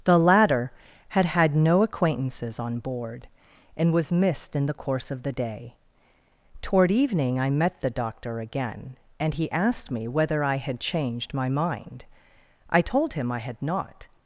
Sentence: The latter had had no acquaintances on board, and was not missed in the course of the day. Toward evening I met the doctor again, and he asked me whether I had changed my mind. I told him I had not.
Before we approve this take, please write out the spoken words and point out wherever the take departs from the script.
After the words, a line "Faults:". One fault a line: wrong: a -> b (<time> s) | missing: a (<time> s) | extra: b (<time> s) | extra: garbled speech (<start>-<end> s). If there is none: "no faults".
The latter had had no acquaintances on board, and was missed in the course of the day. Toward evening I met the doctor again, and he asked me whether I had changed my mind. I told him I had not.
Faults:
missing: not (4.1 s)